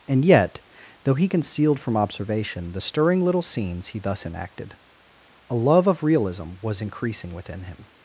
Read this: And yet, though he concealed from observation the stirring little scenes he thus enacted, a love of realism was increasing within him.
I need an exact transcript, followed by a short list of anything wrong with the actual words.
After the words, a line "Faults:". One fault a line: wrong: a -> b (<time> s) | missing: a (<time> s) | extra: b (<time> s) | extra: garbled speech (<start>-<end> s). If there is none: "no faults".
And yet, though he concealed from observation the stirring little scenes he thus enacted, a love of realism was increasing within him.
Faults:
no faults